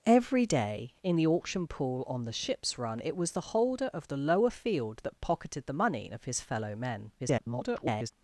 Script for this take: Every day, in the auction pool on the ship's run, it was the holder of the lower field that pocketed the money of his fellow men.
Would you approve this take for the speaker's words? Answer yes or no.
no